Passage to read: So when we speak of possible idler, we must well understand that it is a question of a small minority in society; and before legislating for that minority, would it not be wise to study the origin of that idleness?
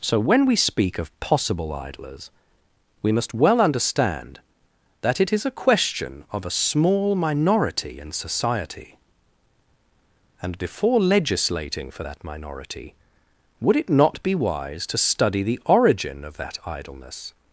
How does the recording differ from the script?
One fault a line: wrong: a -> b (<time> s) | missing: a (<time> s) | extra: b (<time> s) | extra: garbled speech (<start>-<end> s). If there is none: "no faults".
wrong: idler -> idlers (1.7 s)